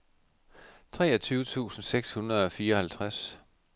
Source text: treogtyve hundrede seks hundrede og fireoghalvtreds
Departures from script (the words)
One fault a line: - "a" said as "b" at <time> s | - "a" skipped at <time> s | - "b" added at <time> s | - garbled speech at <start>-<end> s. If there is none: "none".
- "hundrede" said as "tusind" at 1.4 s